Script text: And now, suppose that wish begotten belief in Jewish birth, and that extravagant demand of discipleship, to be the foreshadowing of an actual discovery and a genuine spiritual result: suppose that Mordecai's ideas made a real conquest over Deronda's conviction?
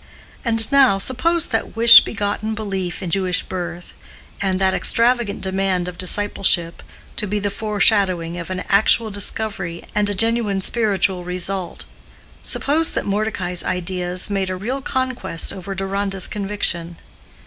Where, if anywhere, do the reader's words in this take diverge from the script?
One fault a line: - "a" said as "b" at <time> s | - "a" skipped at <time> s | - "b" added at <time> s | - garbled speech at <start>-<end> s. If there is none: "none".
none